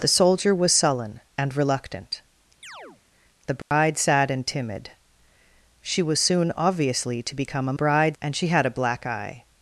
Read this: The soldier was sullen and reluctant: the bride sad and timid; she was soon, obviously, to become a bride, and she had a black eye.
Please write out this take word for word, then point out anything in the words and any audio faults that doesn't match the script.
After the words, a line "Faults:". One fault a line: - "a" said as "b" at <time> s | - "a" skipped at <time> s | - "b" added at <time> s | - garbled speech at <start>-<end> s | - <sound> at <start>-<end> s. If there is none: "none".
The soldier was sullen and reluctant: the bride sad and timid; she was soon, obviously, to become a bride, and she had a black eye.
Faults:
- chirp at 2.6-3.0 s
- dropout at 3.6-3.7 s